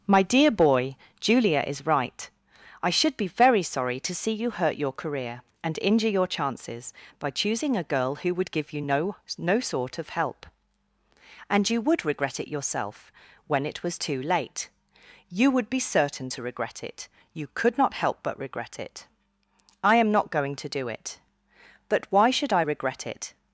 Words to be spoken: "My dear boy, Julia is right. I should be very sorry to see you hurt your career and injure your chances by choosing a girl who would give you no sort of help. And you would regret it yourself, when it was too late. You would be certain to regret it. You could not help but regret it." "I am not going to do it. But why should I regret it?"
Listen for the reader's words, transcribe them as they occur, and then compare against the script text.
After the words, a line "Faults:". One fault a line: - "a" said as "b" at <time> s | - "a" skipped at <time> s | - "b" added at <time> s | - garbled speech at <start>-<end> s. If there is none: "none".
"My dear boy, Julia is right. I should be very sorry to see you hurt your career and injure your chances by choosing a girl who would give you no no sort of help. And you would regret it yourself, when it was too late. You would be certain to regret it. You could not help but regret it." "I am not going to do it. But why should I regret it?"
Faults:
- "no" added at 9.4 s